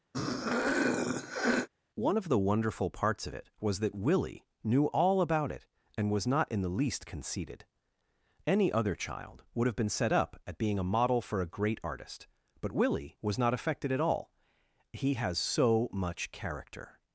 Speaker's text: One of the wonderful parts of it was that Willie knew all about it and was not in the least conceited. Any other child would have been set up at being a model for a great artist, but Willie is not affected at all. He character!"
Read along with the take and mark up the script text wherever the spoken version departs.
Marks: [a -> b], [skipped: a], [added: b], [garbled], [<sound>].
[throat clearing] One of the wonderful parts of it was that Willie knew all about it and was not in the least conceited. Any other child would have been set up at being a model for a great artist, but Willie [is -> was] not affected at all. He [added: has so much] character!"